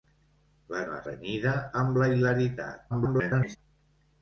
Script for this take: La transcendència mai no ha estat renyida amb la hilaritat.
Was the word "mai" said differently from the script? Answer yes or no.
yes